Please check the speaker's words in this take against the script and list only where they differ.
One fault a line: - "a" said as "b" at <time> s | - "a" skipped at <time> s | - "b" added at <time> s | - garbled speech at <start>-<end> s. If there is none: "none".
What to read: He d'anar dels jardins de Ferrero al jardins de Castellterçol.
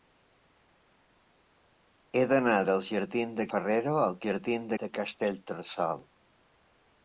none